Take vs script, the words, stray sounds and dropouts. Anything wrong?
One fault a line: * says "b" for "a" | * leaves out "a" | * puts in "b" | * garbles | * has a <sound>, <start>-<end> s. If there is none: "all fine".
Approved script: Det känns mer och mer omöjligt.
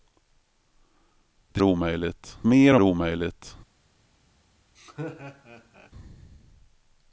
* says "omöjligt" for "känns"
* leaves out "mer"
* has a laugh, 4.7-5.9 s